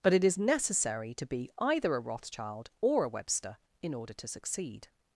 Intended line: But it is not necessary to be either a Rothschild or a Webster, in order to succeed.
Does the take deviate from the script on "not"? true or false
true